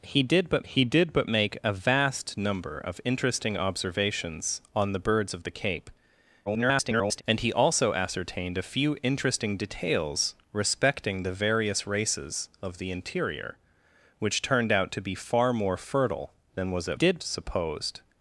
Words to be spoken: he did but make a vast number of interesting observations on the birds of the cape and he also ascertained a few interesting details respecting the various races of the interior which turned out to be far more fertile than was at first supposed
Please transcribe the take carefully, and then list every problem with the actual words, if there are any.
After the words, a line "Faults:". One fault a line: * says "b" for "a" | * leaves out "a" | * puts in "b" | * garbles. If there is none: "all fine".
he did but he did but make a vast number of interesting observations on the birds of the cape [garbled] and he also ascertained a few interesting details respecting the various races of the interior which turned out to be far more fertile than was at did supposed
Faults:
* puts in "he did but"
* garbles
* says "did" for "first"